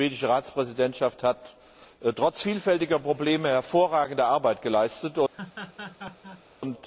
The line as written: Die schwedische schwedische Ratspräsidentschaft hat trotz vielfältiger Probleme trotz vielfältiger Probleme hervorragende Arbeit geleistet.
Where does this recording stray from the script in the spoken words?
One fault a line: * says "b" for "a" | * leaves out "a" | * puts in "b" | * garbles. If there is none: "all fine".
* leaves out "schwedische"
* leaves out "trotz vielfältiger Probleme"